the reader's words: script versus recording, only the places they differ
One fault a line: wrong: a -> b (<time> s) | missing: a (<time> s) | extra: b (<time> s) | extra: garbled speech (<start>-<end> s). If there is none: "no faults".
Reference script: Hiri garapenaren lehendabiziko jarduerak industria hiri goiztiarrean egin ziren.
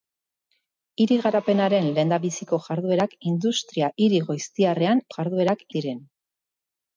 wrong: egin -> jarduerak (5.2 s)